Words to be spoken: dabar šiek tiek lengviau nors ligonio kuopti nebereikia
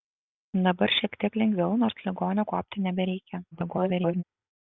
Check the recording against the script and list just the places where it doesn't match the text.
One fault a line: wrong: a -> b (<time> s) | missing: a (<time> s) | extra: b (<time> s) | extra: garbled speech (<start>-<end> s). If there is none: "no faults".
extra: garbled speech (3.5-4.2 s)